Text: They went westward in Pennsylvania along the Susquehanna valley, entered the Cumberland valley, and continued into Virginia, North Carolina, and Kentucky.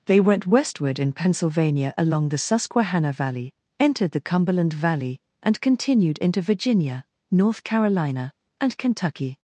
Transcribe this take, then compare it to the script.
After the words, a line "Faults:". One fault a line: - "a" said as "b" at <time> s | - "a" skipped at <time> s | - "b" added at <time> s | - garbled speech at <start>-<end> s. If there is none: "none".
They went westward in Pennsylvania along the Susquehanna valley, entered the Cumberland valley, and continued into Virginia, North Carolina, and Kentucky.
Faults:
none